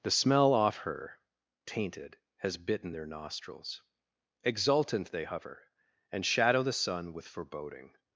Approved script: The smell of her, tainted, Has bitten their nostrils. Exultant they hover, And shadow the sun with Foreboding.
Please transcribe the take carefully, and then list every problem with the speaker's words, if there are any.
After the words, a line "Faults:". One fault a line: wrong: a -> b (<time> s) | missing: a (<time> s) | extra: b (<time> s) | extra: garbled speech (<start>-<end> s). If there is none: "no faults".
The smell off her, tainted, Has bitten their nostrils. Exultant they hover, And shadow the sun with Foreboding.
Faults:
wrong: of -> off (0.5 s)